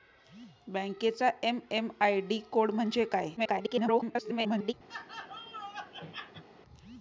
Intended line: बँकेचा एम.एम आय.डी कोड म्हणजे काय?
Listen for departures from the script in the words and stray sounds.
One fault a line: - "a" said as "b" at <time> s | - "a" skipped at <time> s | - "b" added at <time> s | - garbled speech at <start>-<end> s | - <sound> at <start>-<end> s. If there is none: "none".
- garbled speech at 3.4-4.7 s
- laugh at 4.9-6.4 s